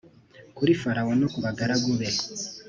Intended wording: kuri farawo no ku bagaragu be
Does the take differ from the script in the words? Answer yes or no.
no